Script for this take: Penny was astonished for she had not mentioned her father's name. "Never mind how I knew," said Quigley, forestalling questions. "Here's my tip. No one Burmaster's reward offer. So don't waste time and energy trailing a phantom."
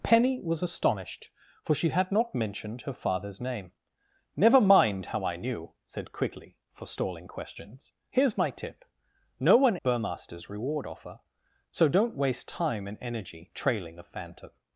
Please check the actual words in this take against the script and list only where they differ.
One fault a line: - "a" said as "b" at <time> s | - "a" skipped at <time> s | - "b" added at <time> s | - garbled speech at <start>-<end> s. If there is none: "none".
none